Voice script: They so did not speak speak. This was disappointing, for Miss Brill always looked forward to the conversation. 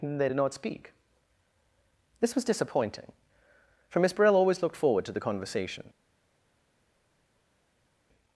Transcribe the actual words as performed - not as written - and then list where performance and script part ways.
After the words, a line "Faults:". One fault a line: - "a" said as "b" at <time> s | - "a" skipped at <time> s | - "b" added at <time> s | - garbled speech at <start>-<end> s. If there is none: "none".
They did not speak. This was disappointing, for Miss Brill always looked forward to the conversation.
Faults:
- "so" skipped at 0.3 s
- "speak" skipped at 0.9 s